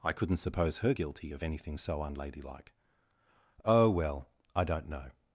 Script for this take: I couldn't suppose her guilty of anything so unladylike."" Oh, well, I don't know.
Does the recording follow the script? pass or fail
pass